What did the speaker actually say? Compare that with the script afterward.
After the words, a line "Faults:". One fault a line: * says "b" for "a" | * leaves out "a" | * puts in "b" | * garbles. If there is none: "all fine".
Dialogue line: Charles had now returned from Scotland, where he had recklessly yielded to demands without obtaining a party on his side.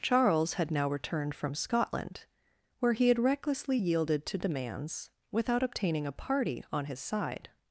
Charles had now returned from Scotland, where he had recklessly yielded to demands without obtaining a party on his side.
Faults:
all fine